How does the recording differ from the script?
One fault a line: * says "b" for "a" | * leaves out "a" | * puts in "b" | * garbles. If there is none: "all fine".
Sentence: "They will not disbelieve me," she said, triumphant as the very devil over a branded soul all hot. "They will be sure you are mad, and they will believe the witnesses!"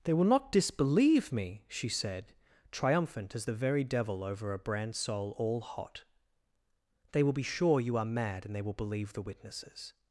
* says "brand" for "branded"